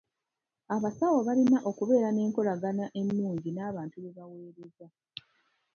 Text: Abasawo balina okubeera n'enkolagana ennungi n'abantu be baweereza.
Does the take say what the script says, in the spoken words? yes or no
yes